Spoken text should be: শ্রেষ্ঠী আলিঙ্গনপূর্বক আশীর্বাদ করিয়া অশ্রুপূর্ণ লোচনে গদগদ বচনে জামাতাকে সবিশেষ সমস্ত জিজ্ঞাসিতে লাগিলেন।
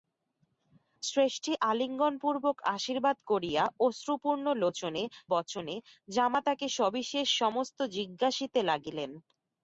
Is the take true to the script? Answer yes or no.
no